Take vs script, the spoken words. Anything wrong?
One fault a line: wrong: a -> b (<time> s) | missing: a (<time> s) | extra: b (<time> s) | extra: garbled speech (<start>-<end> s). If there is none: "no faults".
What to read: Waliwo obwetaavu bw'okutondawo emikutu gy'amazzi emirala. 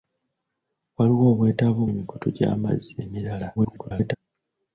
missing: bw'okutondawo (1.8 s)
extra: garbled speech (3.6-4.2 s)